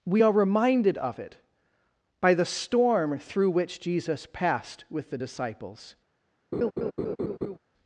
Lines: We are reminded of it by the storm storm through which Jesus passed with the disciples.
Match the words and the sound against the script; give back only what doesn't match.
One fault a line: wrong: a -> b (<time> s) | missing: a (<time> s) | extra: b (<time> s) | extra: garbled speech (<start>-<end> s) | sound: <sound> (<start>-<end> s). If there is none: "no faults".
missing: storm (3.2 s)
sound: laugh (6.5-7.6 s)